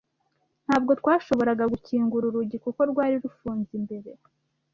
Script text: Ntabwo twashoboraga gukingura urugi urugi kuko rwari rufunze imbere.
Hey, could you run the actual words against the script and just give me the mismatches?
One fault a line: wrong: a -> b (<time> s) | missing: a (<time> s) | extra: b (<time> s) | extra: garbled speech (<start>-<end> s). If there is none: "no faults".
missing: urugi (2.6 s)